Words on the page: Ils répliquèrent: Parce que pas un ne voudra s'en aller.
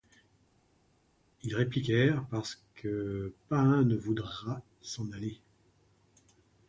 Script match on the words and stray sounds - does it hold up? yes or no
yes